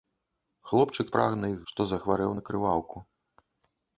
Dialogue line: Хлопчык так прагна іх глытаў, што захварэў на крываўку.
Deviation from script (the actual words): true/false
true